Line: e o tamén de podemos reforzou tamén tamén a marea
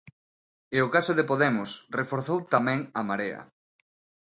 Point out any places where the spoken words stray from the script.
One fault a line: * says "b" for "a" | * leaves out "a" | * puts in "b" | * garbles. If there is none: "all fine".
* says "caso" for "tamén"
* leaves out "tamén"